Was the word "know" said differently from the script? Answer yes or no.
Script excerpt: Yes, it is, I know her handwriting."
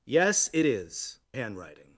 yes